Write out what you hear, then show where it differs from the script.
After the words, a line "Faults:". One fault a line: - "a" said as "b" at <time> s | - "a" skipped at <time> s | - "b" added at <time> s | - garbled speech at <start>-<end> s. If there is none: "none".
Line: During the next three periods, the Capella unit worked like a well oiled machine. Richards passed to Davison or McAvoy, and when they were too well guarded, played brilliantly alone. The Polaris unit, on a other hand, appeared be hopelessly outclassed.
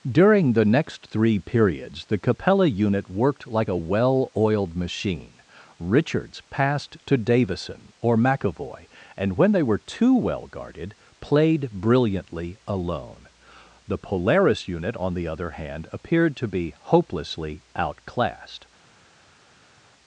During the next three periods, the Capella unit worked like a well oiled machine. Richards passed to Davison or McAvoy, and when they were too well guarded, played brilliantly alone. The Polaris unit, on the other hand, appeared to be hopelessly outclassed.
Faults:
- "a" said as "the" at 15.1 s
- "to" added at 16.4 s